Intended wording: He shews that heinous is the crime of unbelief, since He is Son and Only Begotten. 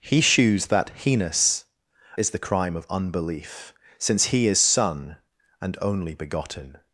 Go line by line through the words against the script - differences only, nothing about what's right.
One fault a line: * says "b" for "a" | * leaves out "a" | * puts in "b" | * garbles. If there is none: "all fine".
all fine